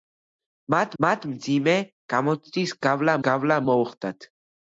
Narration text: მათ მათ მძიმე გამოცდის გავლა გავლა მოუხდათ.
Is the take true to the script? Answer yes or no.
yes